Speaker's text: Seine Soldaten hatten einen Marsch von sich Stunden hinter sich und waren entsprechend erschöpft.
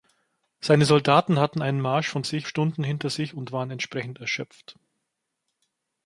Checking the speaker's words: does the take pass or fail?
pass